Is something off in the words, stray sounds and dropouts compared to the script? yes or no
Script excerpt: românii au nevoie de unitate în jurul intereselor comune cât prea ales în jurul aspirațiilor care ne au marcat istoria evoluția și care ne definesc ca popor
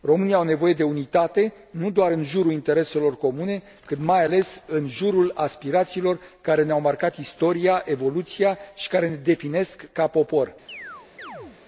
yes